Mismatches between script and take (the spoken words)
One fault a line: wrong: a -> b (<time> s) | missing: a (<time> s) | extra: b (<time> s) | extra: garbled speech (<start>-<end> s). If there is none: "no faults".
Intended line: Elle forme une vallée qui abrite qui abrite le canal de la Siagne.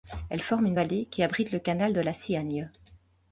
missing: qui abrite (1.5 s)